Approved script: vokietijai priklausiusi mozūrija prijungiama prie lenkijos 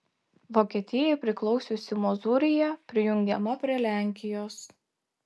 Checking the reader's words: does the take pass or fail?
pass